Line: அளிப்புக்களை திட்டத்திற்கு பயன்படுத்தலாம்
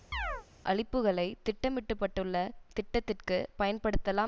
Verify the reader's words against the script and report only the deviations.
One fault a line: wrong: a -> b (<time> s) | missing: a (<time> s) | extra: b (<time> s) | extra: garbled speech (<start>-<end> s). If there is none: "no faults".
extra: திட்டமிட்டப்பட்டுள்ள (1.5 s)